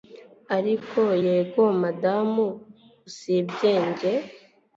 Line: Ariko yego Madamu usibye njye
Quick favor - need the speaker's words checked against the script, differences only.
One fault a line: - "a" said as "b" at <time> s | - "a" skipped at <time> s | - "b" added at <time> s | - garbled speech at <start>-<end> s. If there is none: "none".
none